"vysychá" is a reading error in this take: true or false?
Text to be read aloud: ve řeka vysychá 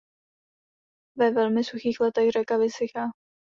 false